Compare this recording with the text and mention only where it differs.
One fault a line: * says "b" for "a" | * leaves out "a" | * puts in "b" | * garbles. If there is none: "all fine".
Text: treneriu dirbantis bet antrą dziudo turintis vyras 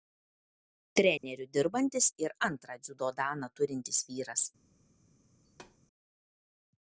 * says "ir" for "bet"
* puts in "daną"